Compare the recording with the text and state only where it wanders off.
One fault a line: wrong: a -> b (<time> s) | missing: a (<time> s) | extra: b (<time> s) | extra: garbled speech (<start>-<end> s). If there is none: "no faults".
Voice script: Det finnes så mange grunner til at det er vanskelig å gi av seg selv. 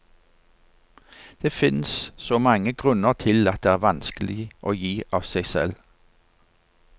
no faults